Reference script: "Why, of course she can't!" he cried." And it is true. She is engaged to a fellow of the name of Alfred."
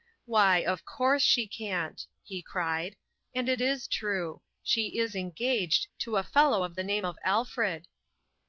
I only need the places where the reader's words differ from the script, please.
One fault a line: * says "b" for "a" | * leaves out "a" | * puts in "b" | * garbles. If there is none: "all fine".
all fine